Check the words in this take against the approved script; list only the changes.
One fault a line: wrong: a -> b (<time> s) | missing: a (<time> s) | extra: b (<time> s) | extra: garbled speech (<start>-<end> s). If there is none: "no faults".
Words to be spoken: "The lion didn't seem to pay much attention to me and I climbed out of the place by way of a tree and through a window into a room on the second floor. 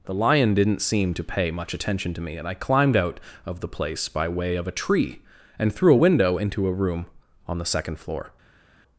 no faults